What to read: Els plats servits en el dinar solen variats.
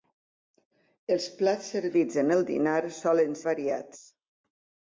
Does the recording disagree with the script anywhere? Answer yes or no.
no